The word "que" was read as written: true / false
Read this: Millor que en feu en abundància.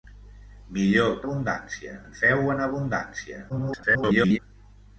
false